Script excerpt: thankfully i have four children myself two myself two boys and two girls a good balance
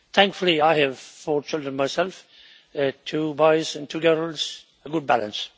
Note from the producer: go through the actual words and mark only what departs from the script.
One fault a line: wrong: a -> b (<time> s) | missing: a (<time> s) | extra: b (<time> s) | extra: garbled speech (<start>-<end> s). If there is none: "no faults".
missing: myself two (3.3 s)